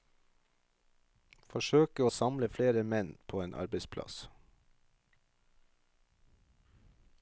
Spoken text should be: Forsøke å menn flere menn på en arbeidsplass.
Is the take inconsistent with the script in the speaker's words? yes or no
yes